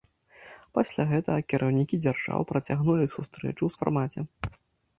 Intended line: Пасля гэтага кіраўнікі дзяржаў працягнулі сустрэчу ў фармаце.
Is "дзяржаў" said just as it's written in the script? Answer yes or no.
yes